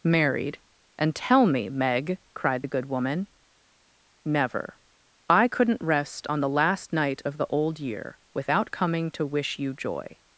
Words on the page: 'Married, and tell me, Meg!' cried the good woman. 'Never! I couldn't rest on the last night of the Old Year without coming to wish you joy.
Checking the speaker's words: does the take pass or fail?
pass